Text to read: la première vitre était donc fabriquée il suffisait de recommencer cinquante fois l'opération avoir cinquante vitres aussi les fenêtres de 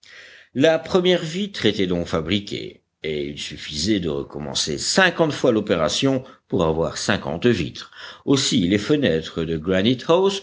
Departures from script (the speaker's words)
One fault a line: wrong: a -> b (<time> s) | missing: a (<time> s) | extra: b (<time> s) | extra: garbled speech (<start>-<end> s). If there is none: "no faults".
extra: et (3.0 s)
extra: pour (6.5 s)